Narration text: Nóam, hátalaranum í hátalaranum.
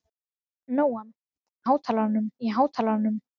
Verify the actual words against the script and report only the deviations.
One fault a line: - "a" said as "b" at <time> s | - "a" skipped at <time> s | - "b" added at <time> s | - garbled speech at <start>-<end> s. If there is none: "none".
none